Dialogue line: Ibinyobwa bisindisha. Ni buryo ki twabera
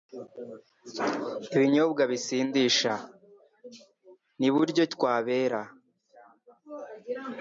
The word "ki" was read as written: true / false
false